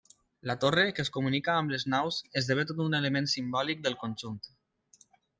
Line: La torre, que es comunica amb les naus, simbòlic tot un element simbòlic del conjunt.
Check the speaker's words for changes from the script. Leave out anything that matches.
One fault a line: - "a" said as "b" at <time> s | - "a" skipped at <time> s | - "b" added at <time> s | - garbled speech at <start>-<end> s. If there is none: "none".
- "simbòlic" said as "esdevé" at 2.4 s